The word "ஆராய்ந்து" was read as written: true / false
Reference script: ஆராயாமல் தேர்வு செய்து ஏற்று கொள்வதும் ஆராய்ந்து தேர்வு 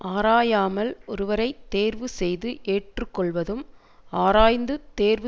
true